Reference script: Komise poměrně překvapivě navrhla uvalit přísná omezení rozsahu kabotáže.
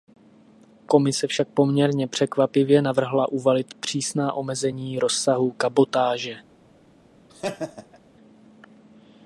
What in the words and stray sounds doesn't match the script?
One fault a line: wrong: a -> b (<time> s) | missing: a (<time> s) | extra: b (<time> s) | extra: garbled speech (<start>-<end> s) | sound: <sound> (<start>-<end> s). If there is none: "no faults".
extra: však (1.3 s)
sound: laugh (7.3-8.0 s)